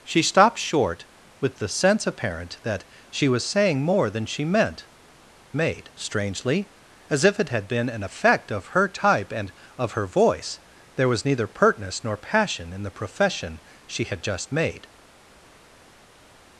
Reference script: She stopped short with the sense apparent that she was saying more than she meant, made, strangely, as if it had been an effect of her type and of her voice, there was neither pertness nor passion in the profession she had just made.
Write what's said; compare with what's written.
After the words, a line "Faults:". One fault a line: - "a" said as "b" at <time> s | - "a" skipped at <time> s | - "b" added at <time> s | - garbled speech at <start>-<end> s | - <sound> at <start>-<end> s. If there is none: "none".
She stopped short with the sense apparent that she was saying more than she meant, made, strangely, as if it had been an effect of her type and of her voice, there was neither pertness nor passion in the profession she had just made.
Faults:
none